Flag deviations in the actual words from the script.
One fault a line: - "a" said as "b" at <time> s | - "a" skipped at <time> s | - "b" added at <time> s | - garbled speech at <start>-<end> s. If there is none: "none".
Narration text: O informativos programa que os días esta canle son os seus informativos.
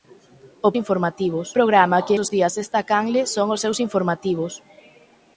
none